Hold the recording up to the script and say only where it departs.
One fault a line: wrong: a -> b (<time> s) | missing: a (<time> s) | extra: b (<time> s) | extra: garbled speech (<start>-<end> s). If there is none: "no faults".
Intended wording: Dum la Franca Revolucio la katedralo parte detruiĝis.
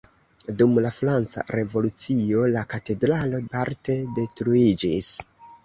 no faults